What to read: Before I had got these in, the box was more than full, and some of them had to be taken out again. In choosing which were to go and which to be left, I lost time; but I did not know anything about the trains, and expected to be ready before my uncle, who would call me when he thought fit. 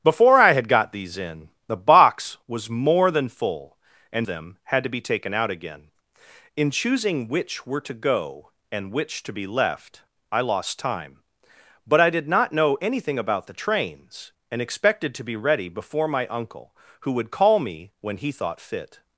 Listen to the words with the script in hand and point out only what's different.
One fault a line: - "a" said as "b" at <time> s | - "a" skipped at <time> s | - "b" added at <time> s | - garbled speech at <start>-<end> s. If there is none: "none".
- "some of" skipped at 4.3 s